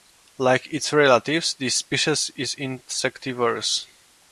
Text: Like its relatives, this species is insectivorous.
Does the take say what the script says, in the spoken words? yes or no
yes